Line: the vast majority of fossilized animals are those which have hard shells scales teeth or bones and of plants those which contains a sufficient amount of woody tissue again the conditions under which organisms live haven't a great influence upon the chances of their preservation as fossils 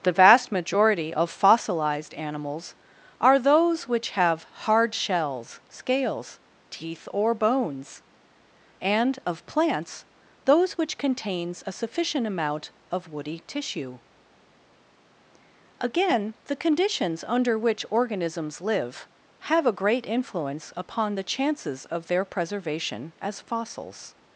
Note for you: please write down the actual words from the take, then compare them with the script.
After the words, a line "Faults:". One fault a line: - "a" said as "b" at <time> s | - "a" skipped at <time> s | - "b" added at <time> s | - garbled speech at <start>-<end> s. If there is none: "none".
the vast majority of fossilized animals are those which have hard shells scales teeth or bones and of plants those which contains a sufficient amount of woody tissue again the conditions under which organisms live have a great influence upon the chances of their preservation as fossils
Faults:
- "haven't" said as "have" at 19.4 s